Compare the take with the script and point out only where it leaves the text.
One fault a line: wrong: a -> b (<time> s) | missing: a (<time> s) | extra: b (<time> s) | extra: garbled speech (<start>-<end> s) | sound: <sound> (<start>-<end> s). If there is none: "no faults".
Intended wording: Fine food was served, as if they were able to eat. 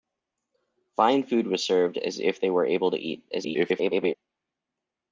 extra: garbled speech (3.3-4.1 s)